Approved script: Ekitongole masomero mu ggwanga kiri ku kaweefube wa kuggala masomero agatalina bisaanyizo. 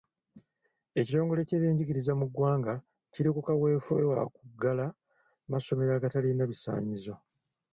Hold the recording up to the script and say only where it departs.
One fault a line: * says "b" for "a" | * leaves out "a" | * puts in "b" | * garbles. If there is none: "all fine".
* says "ky'ebyenjigiriza" for "masomero"